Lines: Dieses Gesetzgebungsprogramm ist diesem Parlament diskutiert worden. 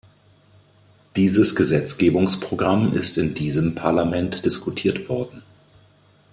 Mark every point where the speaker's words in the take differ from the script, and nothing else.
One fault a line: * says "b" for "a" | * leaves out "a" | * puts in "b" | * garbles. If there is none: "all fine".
* puts in "in"